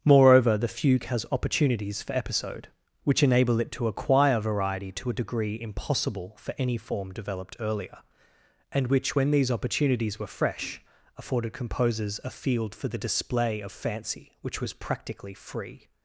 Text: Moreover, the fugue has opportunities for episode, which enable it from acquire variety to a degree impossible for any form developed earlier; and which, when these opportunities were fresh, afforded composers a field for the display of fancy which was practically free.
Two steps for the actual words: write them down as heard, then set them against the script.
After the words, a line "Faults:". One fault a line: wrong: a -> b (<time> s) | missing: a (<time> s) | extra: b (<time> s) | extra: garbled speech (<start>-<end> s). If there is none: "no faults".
Moreover, the fugue has opportunities for episode, which enable it to acquire variety to a degree impossible for any form developed earlier; and which, when these opportunities were fresh, afforded composers a field for the display of fancy which was practically free.
Faults:
wrong: from -> to (3.7 s)